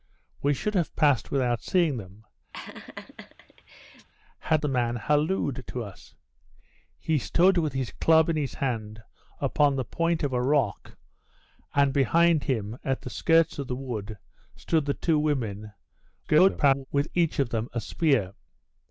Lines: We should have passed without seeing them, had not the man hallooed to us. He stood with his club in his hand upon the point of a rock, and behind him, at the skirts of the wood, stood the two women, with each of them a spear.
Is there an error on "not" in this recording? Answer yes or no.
yes